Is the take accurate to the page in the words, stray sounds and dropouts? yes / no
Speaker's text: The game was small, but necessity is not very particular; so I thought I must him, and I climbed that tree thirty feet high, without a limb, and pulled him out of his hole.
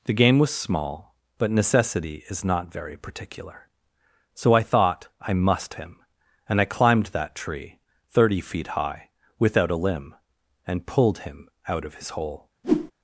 no